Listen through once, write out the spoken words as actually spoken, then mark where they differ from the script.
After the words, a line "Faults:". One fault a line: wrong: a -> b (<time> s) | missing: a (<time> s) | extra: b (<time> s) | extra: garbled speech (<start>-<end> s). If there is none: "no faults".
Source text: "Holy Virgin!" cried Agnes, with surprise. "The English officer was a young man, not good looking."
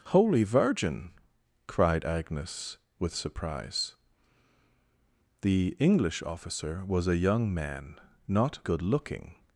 "Holy Virgin!" cried Agnes, with surprise. "The English officer was a young man, not good looking."
Faults:
no faults